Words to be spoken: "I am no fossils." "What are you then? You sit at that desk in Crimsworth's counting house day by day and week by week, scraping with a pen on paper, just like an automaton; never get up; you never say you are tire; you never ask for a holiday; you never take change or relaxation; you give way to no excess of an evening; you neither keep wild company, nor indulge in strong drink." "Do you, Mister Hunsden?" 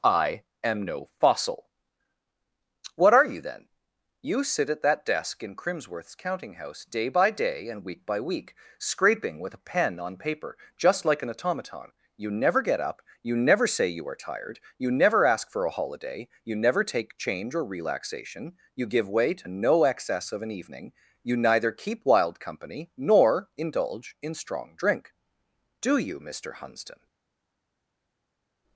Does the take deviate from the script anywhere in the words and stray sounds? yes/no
yes